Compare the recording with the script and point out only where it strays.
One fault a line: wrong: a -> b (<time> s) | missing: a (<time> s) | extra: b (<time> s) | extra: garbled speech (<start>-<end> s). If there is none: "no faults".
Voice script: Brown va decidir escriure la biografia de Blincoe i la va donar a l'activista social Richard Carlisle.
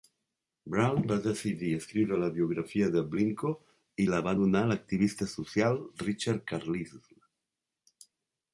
no faults